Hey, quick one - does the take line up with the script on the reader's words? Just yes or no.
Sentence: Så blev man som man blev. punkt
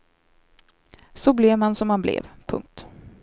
yes